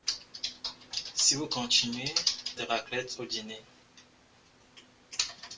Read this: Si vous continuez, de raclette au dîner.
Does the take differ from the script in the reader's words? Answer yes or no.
no